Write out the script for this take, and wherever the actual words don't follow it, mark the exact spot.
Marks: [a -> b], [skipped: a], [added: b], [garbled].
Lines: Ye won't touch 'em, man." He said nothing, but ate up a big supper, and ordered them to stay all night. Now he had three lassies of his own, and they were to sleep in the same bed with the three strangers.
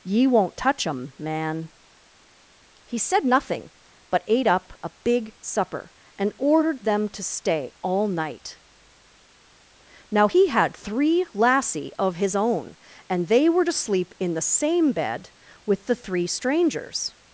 Ye won't touch 'em, man." He said nothing, but ate up a big supper, and ordered them to stay all night. Now he had three [lassies -> lassie] of his own, and they were to sleep in the same bed with the three strangers.